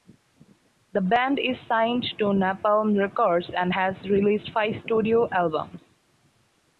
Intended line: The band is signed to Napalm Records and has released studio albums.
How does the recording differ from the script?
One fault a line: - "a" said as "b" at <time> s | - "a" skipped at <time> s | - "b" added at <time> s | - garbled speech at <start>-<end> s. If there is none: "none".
- "five" added at 4.5 s